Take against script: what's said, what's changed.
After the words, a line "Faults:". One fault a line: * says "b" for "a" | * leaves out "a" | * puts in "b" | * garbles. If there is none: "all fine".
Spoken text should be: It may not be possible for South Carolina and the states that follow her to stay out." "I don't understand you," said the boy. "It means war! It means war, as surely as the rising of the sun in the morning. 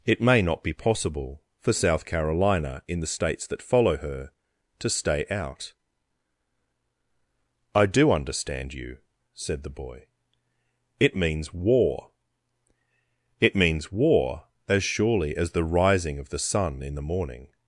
It may not be possible for South Carolina in the states that follow her to stay out." "I do understand you," said the boy. "It means war! It means war, as surely as the rising of the sun in the morning.
Faults:
* says "in" for "and"
* says "do" for "don't"